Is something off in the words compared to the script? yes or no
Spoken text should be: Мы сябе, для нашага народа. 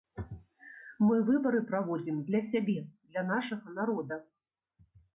yes